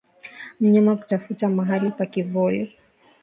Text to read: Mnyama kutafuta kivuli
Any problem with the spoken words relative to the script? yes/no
yes